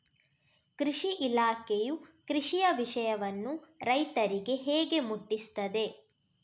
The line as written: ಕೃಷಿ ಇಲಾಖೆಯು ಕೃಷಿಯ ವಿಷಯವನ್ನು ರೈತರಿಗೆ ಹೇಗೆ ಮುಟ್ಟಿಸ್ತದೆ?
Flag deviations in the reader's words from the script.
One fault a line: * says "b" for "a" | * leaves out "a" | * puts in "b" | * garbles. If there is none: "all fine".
all fine